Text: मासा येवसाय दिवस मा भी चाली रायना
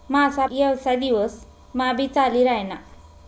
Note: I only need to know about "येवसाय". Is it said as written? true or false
true